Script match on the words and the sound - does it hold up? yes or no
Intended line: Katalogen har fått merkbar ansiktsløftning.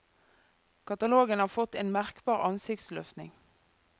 no